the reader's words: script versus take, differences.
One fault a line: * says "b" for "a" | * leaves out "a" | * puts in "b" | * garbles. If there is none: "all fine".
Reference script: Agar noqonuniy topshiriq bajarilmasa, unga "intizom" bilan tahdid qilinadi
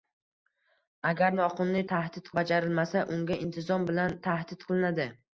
* says "tahdid" for "topshiriq"